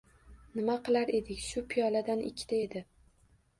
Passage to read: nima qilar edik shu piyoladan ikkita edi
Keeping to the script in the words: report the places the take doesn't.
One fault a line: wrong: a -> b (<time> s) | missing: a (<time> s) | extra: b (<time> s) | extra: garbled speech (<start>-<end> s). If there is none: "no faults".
no faults